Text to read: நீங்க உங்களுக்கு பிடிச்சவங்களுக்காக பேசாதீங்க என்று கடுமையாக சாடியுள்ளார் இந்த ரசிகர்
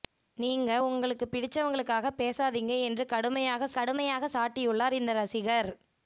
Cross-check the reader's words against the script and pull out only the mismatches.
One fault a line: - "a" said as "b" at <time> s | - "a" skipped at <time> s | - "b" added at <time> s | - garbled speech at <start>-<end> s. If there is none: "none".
- "கடுமையாக" added at 3.7 s